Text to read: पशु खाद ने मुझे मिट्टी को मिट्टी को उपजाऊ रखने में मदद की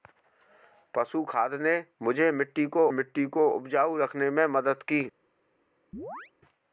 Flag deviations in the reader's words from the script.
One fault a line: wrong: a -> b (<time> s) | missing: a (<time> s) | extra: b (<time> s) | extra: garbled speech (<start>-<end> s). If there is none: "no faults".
no faults